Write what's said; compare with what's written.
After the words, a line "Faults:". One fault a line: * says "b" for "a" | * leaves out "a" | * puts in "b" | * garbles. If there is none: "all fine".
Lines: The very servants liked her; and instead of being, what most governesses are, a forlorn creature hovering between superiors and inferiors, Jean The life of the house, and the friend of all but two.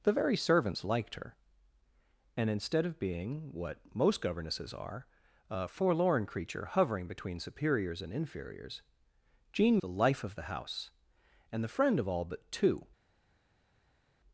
The very servants liked her; and instead of being, what most governesses are, a forlorn creature hovering between superiors and inferiors, Jean The life of the house, and the friend of all but two.
Faults:
all fine